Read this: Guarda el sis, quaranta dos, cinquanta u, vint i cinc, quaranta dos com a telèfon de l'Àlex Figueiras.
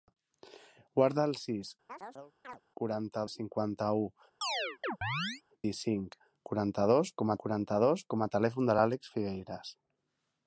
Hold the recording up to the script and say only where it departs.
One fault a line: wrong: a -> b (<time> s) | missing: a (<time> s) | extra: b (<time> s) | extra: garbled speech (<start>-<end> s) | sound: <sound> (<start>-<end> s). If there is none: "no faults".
sound: chirp (1.9-2.6 s)
missing: dos (3.2 s)
missing: vint (4.1 s)
sound: chirp (4.4-5.4 s)
extra: quaranta dos com (7.4 s)